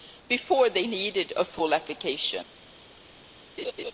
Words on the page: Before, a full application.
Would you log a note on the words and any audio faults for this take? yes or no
yes